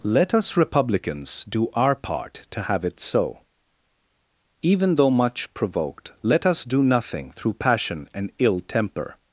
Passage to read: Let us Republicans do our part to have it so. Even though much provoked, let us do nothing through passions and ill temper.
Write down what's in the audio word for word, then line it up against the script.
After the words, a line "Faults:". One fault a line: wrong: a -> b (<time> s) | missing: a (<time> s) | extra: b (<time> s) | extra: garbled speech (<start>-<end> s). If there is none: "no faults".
Let us Republicans do our part to have it so. Even though much provoked, let us do nothing through passion and ill temper.
Faults:
wrong: passions -> passion (7.5 s)